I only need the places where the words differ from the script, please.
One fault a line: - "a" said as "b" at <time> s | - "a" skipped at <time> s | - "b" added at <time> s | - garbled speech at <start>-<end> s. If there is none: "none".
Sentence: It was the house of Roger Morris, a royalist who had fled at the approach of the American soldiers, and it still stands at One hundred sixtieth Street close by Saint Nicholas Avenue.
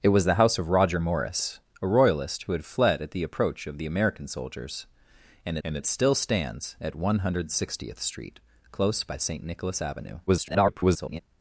- "and" added at 5.6 s
- garbled speech at 10.3-11.2 s